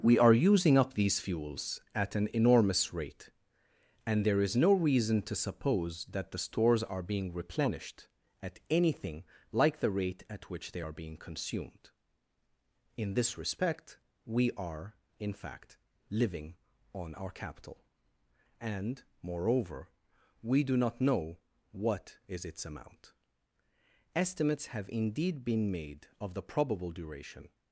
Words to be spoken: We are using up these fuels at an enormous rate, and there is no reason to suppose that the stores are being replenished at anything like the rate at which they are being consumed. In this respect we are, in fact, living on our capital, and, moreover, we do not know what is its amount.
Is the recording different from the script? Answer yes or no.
yes